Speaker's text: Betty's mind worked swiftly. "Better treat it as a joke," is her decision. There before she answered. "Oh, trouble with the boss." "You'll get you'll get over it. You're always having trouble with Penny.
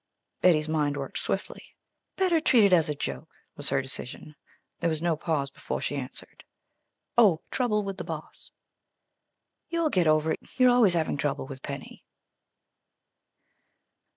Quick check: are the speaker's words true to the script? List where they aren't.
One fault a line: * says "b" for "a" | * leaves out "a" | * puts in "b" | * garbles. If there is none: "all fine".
* says "was" for "is"
* puts in "was no pause"
* leaves out "you'll get"